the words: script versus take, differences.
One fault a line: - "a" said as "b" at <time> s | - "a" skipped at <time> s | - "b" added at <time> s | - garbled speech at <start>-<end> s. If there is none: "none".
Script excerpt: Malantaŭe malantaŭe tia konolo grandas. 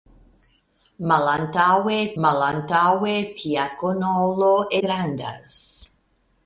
none